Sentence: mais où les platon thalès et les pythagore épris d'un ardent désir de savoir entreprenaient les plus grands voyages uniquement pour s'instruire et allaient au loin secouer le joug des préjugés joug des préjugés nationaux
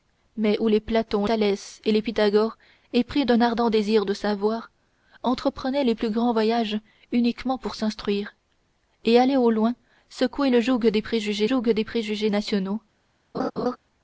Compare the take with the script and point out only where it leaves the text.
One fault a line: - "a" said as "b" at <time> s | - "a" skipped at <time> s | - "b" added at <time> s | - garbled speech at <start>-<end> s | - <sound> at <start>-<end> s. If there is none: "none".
- laugh at 13.3-13.8 s